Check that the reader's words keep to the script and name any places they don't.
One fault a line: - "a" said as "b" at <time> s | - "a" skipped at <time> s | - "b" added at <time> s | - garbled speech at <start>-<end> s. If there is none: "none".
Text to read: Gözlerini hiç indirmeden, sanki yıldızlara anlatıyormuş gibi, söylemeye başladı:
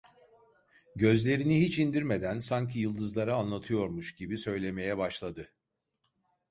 none